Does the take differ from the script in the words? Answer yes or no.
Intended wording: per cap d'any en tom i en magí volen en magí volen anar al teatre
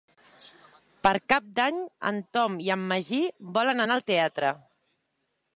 yes